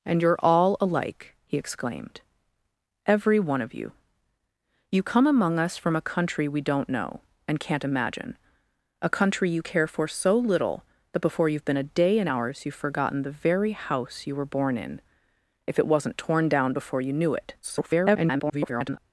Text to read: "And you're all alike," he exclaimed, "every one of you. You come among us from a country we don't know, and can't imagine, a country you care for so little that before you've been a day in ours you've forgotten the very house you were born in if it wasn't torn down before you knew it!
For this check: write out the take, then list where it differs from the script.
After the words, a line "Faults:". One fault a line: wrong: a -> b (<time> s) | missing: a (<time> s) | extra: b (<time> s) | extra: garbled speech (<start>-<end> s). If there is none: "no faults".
"And you're all alike," he exclaimed, "every one of you. You come among us from a country we don't know, and can't imagine, a country you care for so little that before you've been a day in ours you've forgotten the very house you were born in if it wasn't torn down before you knew it! [garbled]
Faults:
extra: garbled speech (17.6-19.0 s)